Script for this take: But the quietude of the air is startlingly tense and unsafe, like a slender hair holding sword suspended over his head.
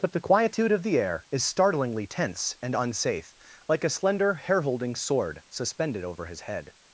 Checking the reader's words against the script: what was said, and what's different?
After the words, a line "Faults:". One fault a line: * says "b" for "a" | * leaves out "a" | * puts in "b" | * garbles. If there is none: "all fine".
But the quietude of the air is startlingly tense and unsafe, like a slender hair holding sword suspended over his head.
Faults:
all fine